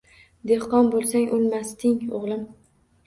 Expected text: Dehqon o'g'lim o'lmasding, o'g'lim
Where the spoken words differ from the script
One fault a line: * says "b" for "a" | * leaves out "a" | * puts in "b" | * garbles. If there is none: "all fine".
* says "bo'lsang" for "o'g'lim"